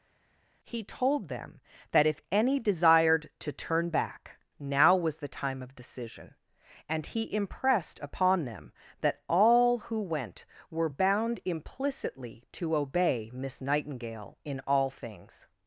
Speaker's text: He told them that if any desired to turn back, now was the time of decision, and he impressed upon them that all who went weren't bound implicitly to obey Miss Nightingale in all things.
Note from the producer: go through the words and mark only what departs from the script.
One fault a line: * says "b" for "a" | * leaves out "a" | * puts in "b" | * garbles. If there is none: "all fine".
* says "were" for "weren't"